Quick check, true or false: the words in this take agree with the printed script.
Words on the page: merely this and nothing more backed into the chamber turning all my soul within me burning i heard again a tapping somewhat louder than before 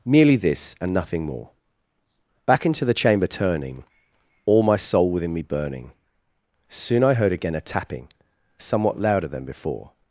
false